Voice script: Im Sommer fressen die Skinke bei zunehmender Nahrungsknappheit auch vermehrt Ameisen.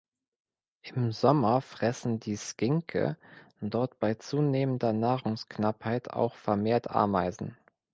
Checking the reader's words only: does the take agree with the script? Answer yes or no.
no